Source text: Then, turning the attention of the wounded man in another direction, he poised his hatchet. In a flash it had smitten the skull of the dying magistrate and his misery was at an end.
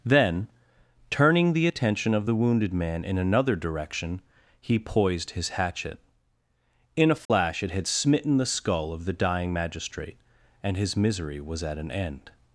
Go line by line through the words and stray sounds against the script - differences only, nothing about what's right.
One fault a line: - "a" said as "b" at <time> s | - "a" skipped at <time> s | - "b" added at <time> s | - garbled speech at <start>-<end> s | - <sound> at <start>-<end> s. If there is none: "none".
- dropout at 7.2-7.3 s